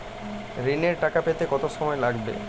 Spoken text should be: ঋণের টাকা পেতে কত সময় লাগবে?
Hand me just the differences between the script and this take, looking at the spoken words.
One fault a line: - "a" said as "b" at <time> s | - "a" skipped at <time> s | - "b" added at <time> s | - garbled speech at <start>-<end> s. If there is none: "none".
none